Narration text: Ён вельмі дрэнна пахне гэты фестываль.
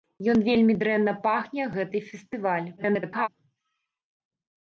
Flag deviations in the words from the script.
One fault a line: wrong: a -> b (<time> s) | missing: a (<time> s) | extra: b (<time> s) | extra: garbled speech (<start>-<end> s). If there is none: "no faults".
extra: garbled speech (2.8-3.3 s)